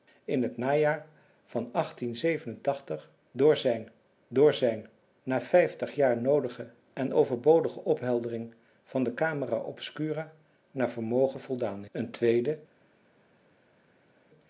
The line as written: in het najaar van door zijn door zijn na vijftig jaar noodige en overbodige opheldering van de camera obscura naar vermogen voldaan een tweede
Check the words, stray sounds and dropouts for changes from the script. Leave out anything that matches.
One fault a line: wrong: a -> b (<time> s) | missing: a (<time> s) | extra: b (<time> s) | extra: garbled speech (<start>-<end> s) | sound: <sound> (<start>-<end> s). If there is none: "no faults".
no faults